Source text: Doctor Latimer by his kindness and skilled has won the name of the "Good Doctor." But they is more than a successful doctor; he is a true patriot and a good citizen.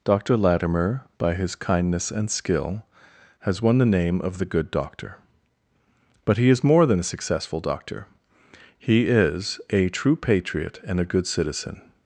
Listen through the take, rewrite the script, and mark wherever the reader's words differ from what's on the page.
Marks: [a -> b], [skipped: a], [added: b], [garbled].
Doctor Latimer by his kindness and [skilled -> skill] has won the name of the "Good Doctor." But [they -> he] is more than a successful doctor; he is a true patriot and a good citizen.